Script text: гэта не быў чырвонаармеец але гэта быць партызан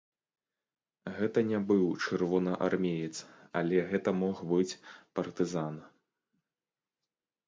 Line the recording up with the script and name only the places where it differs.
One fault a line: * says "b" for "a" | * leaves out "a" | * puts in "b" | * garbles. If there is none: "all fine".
* puts in "мог"